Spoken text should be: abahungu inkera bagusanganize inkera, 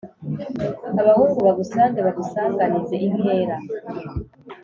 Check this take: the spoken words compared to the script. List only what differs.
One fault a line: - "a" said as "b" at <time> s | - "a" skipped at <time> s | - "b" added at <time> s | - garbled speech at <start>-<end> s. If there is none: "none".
- "inkera" said as "bagusange" at 1.5 s